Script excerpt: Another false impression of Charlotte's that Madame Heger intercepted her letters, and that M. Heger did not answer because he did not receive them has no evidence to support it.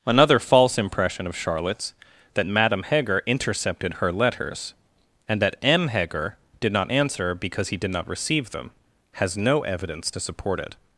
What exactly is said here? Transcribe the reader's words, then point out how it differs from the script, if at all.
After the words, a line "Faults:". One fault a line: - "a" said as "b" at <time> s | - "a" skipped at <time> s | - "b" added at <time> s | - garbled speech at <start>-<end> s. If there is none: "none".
Another false impression of Charlotte's that Madame Heger intercepted her letters, and that M. Heger did not answer because he did not receive them has no evidence to support it.
Faults:
none